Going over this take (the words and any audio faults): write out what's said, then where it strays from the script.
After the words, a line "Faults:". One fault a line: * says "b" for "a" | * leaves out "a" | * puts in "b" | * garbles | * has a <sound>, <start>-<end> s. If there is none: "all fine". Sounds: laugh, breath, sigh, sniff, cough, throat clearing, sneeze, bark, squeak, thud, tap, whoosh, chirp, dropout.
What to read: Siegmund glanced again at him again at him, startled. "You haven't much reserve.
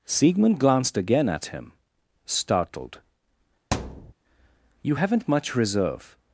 Siegmund glanced again at him, startled. "You haven't much reserve.
Faults:
* leaves out "again at him"
* has a thud, 3.7-4.1 s